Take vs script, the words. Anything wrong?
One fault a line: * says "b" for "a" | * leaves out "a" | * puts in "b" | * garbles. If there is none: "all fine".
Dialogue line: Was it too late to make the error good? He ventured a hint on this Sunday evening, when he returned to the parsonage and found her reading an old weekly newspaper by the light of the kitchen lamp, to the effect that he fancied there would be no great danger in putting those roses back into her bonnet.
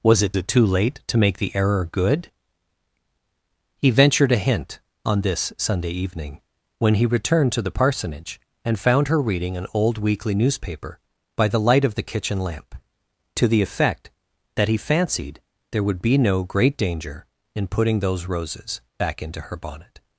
* puts in "it"